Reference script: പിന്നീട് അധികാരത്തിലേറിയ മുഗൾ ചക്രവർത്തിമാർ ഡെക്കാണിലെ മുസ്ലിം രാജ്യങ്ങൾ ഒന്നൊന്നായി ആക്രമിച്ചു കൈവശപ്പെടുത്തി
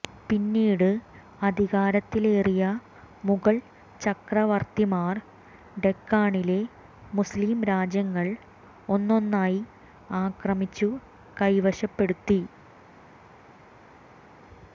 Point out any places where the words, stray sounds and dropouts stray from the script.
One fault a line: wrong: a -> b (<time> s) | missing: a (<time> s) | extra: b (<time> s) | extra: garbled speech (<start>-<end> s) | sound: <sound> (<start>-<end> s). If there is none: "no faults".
no faults